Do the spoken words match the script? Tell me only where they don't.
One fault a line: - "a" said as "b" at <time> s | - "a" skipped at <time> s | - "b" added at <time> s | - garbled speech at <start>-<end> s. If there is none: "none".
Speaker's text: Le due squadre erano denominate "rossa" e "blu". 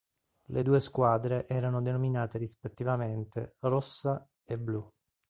- "rispettivamente" added at 2.4 s